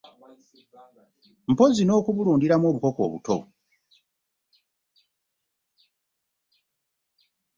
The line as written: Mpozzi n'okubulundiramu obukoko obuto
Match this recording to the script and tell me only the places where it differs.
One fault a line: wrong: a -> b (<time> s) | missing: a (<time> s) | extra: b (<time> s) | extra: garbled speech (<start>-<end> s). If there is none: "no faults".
no faults